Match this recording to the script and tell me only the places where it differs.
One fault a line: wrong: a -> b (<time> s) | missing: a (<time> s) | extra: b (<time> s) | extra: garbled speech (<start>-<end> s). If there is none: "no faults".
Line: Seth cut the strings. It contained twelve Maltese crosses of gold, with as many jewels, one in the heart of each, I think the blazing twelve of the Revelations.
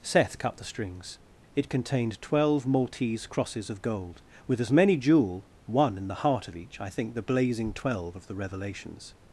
wrong: jewels -> jewel (5.0 s)